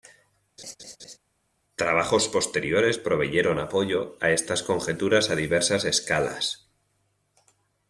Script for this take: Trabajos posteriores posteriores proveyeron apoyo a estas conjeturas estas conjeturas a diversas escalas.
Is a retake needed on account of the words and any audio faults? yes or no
yes